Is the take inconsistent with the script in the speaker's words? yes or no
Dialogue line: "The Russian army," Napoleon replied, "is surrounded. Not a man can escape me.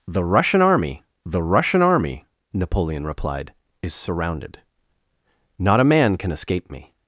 yes